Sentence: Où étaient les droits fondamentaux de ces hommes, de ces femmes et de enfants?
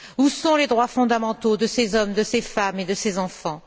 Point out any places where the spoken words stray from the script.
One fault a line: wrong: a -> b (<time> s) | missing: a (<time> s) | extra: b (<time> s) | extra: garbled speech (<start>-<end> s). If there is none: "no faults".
wrong: étaient -> sont (0.3 s)
extra: ces (2.9 s)